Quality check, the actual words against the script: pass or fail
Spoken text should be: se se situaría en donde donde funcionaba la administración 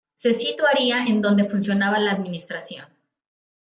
fail